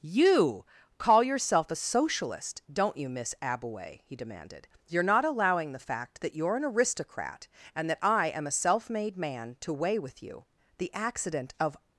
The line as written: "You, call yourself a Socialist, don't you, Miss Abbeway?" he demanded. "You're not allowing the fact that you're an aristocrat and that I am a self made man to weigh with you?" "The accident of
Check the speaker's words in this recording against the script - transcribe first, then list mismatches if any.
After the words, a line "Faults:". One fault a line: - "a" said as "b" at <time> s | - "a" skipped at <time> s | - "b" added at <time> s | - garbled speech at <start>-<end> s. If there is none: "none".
"You, call yourself a Socialist, don't you, Miss Abbeway?" he demanded. "You're not allowing the fact that you're an aristocrat and that I am a self made man to weigh with you?" "The accident of
Faults:
none